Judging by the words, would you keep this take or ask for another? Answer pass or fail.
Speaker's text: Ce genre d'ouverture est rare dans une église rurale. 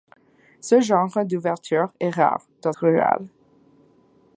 fail